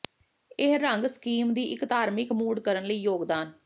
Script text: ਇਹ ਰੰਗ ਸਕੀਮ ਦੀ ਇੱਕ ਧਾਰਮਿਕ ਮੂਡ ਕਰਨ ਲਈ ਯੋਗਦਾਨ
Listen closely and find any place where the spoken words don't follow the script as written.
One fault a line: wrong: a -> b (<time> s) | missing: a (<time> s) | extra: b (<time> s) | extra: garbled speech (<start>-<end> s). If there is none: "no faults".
no faults